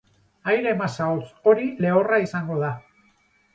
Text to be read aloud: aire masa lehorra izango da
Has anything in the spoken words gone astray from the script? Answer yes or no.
yes